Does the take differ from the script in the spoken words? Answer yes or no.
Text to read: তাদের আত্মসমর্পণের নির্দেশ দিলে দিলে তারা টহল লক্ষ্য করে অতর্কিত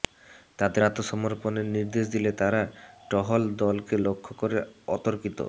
yes